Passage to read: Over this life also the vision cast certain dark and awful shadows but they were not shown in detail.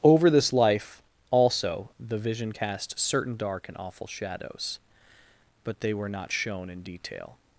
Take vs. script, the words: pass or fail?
pass